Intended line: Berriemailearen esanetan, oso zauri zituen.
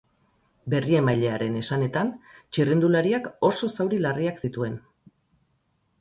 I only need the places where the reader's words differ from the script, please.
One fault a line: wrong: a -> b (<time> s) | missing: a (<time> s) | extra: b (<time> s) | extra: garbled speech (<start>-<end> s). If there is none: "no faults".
extra: txirrindulariak (2.5 s)
extra: larriak (4.0 s)